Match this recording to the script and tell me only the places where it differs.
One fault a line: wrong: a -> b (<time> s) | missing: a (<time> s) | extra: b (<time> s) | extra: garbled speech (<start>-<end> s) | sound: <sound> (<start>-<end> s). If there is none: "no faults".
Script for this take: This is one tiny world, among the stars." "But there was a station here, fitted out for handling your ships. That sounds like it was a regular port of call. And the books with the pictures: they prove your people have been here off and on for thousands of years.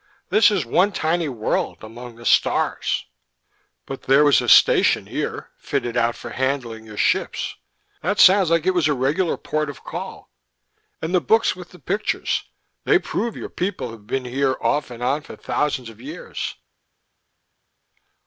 no faults